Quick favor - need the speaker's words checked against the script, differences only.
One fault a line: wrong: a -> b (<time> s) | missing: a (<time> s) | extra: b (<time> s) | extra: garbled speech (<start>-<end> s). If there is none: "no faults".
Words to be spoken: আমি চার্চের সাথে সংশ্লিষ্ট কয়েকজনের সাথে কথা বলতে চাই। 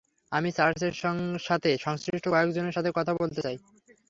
no faults